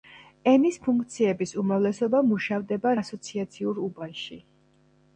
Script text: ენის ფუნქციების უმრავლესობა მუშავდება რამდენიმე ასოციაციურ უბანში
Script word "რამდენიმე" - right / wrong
wrong